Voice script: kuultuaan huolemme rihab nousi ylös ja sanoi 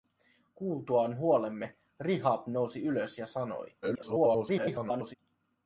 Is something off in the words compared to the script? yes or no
yes